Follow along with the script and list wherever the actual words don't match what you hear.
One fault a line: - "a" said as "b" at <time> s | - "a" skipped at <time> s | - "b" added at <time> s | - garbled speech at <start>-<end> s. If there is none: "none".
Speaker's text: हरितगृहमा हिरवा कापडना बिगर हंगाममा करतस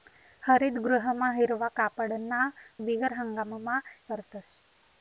none